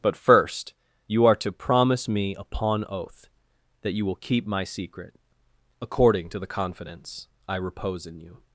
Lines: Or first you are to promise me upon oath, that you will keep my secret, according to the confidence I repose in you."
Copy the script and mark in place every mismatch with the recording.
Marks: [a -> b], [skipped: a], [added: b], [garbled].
[Or -> But] first you are to promise me upon oath, that you will keep my secret, according to the confidence I repose in you."